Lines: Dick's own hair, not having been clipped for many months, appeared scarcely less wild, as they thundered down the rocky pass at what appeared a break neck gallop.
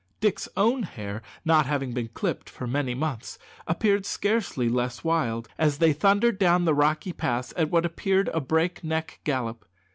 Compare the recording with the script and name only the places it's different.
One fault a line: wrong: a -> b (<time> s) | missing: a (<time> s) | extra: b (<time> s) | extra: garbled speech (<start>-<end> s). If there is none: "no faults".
no faults